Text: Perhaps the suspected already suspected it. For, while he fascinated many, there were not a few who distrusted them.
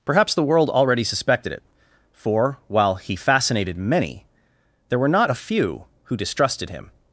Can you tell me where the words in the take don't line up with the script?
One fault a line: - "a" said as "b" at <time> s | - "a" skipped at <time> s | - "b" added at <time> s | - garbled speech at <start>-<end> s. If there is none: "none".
- "suspected" said as "world" at 0.4 s
- "them" said as "him" at 6.7 s